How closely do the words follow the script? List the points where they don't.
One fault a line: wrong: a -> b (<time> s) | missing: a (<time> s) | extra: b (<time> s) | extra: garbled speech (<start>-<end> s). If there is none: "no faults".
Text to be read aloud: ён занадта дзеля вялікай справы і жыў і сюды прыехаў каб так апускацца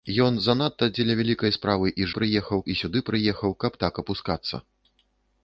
wrong: жыў -> прыехаў (2.2 s)